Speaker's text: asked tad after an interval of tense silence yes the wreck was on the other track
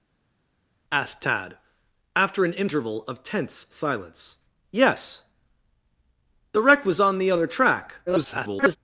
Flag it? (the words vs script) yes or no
yes